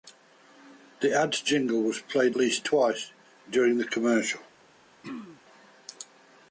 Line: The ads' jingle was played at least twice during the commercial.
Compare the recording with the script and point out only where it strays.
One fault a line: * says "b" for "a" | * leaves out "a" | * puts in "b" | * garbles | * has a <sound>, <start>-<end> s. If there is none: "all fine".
* leaves out "at"
* has a throat clearing, 5.0-5.4 s